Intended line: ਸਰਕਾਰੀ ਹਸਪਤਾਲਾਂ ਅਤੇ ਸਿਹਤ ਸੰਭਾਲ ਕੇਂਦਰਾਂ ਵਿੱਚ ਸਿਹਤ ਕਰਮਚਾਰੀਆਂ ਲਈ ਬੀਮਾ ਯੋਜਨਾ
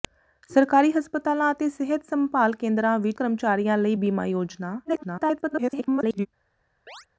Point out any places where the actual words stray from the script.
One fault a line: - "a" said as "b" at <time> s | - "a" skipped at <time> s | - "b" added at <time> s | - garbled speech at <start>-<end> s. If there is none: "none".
- "ਸਿਹਤ" skipped at 3.2 s
- garbled speech at 4.8-6.3 s